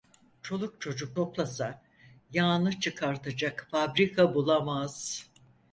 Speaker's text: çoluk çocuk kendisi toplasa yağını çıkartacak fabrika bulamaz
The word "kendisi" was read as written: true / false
false